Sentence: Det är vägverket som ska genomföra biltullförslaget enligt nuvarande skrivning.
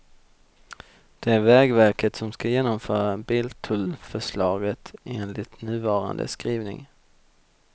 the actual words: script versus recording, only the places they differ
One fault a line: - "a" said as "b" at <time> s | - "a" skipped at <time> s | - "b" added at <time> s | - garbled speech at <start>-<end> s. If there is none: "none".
none